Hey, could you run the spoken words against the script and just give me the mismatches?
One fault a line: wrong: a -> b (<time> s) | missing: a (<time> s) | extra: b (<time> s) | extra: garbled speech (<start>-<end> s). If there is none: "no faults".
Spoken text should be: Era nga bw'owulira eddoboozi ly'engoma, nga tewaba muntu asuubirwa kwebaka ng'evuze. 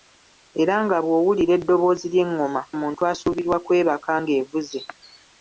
missing: nga tewaba (2.6 s)